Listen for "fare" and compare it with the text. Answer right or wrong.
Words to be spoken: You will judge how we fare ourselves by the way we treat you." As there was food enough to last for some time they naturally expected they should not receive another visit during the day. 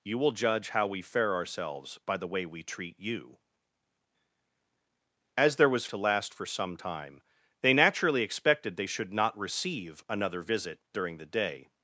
right